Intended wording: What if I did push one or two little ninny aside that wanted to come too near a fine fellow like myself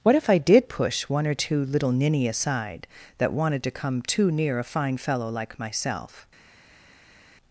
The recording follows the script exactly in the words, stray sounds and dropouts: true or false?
true